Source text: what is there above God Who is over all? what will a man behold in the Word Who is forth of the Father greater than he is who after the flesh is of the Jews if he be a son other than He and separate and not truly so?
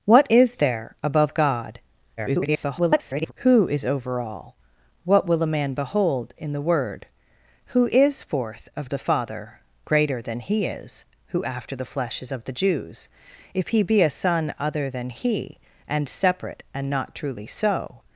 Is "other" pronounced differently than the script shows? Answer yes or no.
no